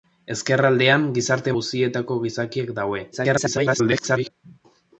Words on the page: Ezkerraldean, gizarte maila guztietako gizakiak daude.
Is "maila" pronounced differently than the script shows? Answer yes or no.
yes